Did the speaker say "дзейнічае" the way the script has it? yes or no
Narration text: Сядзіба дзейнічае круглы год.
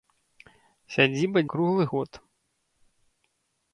no